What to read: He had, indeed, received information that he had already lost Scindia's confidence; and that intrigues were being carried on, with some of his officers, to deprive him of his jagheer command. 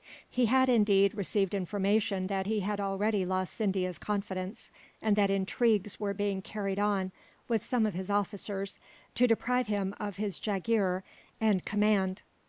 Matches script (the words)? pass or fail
fail